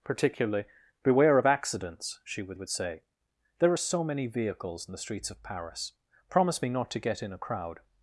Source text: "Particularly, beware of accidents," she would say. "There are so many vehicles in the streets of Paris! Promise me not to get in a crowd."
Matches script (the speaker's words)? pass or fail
fail